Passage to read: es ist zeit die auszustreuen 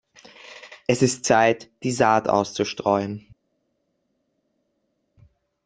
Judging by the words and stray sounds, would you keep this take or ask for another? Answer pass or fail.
fail